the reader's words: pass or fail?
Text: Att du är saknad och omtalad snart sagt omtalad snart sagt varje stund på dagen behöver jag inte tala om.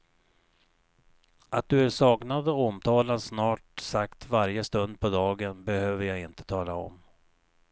fail